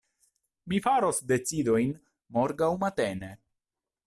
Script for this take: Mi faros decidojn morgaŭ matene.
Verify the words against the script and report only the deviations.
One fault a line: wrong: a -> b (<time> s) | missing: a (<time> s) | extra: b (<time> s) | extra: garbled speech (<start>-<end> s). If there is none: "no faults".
no faults